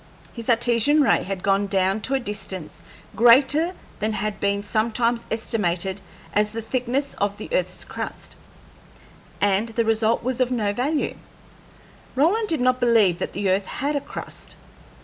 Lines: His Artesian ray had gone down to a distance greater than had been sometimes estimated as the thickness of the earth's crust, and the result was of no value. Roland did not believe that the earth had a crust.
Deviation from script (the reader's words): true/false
false